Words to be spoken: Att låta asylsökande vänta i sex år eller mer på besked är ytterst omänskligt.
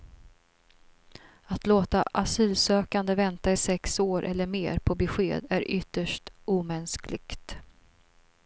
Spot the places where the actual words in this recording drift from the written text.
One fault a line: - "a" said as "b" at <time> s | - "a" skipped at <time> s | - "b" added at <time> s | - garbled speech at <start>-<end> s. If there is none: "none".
none